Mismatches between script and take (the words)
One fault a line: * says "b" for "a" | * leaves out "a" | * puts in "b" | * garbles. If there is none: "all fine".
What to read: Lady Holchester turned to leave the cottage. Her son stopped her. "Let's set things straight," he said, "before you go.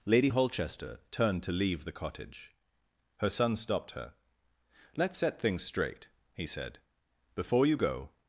all fine